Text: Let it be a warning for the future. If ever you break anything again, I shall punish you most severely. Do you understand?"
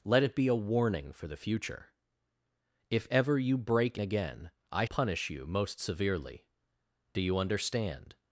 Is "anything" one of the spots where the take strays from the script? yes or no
yes